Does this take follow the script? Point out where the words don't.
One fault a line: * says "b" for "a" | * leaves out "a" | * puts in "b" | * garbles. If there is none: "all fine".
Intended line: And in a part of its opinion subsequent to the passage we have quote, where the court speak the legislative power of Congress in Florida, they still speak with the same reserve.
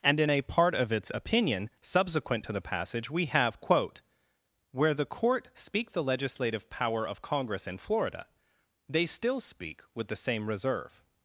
all fine